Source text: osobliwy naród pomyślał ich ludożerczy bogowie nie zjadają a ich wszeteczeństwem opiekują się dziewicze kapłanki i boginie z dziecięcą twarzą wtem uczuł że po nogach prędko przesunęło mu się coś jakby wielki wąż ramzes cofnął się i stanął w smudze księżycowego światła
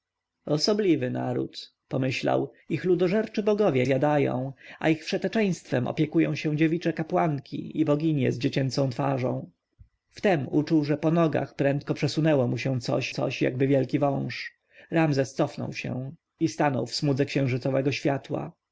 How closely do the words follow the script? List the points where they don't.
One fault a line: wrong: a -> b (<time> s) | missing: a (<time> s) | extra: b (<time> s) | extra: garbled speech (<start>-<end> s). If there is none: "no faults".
missing: nie (3.9 s)
extra: coś (13.1 s)